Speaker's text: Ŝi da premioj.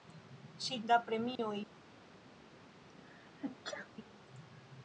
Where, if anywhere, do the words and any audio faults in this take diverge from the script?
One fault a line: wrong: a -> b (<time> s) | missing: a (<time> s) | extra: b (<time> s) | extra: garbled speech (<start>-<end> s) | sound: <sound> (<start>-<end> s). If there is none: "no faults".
sound: dropout (1.4-1.4 s)
sound: sneeze (2.9-3.9 s)